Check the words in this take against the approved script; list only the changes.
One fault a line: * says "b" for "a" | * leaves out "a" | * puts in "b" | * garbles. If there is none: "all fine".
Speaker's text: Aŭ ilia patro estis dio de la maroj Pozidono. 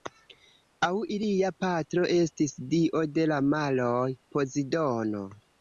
all fine